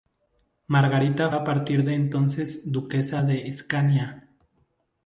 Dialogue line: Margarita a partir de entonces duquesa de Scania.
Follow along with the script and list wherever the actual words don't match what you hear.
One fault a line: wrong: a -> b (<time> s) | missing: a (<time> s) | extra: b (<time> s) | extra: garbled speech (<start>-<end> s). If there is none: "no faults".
no faults